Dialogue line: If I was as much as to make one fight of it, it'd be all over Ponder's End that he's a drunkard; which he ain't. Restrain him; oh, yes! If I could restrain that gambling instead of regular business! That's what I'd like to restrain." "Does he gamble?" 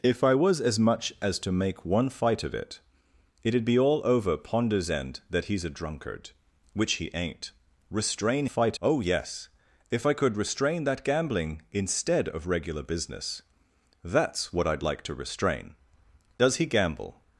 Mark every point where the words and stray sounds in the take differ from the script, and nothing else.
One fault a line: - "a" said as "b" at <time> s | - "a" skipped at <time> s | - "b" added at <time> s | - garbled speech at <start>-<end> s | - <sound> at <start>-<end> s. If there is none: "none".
- "him" said as "fight" at 8.4 s